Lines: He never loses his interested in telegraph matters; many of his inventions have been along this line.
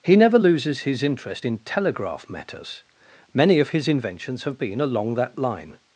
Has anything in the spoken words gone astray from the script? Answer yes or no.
yes